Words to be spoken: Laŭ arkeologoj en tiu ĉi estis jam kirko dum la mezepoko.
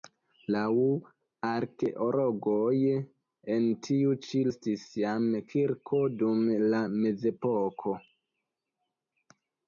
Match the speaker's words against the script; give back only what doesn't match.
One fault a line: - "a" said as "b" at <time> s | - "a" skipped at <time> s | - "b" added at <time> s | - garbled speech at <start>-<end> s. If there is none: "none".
none